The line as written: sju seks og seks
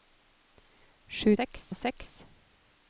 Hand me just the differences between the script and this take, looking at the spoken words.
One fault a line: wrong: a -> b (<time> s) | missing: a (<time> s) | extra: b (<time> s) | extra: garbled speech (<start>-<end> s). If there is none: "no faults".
no faults